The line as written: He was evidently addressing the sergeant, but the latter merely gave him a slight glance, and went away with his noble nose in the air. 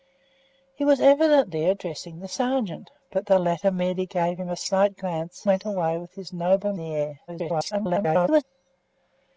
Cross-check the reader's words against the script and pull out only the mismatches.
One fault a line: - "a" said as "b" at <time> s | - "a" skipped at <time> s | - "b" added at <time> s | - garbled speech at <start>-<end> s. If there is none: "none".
- "and" skipped at 5.5 s
- "nose in" skipped at 6.7 s
- garbled speech at 7.3-8.4 s